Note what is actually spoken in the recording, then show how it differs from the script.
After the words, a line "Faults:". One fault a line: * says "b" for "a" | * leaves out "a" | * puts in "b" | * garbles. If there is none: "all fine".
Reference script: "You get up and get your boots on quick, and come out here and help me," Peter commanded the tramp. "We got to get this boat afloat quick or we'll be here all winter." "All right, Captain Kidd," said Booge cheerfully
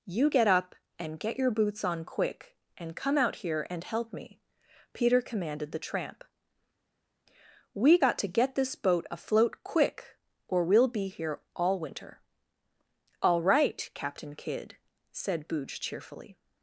"You get up and get your boots on quick, and come out here and help me," Peter commanded the tramp. "We got to get this boat afloat quick or we'll be here all winter." "All right, Captain Kidd," said Booge cheerfully
Faults:
all fine